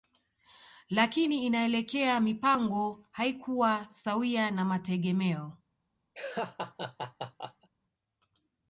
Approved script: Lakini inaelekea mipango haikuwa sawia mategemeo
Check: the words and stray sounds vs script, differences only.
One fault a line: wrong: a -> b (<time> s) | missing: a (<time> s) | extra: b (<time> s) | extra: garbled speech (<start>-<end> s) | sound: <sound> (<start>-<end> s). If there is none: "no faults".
extra: na (4.5 s)
sound: laugh (6.1-7.7 s)